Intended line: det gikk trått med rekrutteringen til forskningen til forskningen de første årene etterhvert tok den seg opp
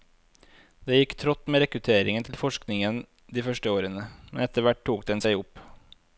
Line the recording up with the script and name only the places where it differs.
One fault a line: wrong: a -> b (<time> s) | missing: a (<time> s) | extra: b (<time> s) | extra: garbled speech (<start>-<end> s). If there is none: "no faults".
missing: til forskningen (3.0 s)
extra: men (4.3 s)